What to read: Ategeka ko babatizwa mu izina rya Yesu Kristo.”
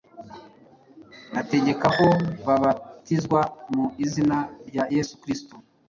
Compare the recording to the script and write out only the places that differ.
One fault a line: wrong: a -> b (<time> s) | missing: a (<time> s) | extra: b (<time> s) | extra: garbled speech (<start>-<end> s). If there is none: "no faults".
no faults